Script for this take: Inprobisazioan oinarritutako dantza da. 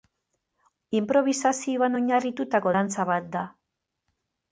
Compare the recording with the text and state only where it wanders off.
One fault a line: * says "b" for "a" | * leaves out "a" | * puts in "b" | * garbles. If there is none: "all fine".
* puts in "bat"